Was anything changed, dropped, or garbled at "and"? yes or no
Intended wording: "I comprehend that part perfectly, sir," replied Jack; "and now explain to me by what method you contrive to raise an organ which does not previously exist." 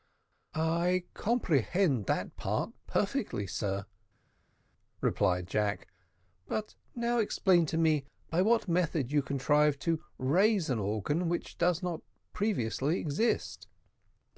yes